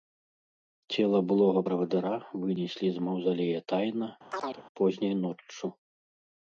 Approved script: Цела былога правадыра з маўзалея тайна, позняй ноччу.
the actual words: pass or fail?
fail